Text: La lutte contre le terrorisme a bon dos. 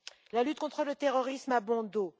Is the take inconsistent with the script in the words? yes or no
no